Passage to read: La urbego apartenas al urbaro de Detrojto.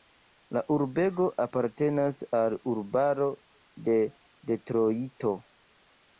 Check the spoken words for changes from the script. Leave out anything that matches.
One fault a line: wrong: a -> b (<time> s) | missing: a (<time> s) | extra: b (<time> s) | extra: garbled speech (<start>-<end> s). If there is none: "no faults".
no faults